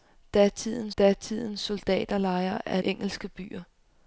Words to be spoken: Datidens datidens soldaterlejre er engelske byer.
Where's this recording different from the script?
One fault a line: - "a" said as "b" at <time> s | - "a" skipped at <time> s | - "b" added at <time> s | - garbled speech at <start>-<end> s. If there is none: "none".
none